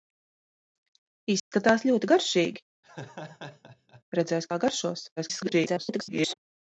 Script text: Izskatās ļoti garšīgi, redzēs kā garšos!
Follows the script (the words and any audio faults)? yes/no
no